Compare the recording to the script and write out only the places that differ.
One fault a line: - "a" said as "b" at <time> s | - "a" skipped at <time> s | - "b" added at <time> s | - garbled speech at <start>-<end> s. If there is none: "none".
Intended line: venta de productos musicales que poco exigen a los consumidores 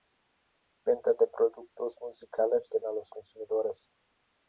- "poco exigen" skipped at 2.8 s